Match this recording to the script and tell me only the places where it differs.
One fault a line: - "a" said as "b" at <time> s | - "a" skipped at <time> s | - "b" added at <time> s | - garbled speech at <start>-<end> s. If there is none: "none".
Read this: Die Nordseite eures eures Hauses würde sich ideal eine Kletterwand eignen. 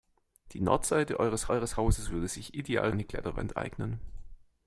none